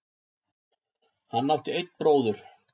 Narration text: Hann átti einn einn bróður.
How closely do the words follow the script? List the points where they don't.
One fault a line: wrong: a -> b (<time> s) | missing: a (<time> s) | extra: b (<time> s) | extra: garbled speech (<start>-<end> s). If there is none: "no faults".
missing: einn (1.9 s)